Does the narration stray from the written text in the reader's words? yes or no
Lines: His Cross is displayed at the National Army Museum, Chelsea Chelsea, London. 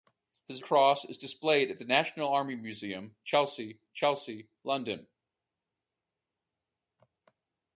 no